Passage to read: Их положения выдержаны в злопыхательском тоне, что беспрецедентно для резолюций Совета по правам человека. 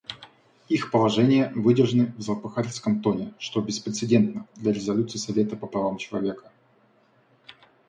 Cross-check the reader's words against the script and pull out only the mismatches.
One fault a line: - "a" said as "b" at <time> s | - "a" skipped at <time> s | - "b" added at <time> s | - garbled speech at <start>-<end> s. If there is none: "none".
none